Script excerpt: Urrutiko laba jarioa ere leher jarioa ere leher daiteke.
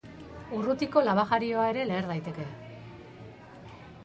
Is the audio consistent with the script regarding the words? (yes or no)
no